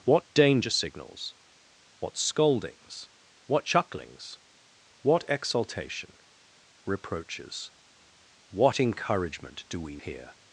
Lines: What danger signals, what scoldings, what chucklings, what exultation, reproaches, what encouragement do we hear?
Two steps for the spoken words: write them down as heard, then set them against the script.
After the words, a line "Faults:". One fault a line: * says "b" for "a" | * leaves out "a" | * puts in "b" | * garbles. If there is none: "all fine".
What danger signals, what scoldings, what chucklings, what exultation, reproaches, what encouragement do we hear?
Faults:
all fine